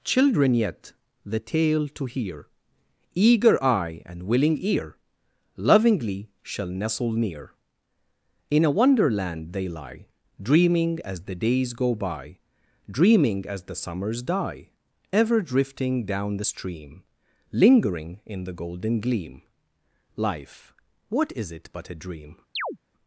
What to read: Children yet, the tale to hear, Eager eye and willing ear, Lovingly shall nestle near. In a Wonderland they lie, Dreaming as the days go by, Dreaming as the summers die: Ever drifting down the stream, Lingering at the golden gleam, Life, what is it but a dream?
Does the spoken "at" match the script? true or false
false